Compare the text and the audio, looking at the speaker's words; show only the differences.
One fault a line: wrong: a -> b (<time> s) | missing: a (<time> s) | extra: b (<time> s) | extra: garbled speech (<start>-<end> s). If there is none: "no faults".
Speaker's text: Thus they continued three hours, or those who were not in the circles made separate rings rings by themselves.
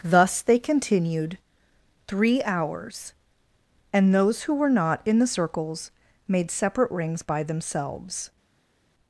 wrong: or -> and (3.9 s)
missing: rings (7.2 s)